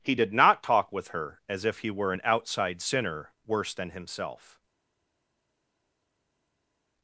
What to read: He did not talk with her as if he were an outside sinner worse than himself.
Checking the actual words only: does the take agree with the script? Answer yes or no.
yes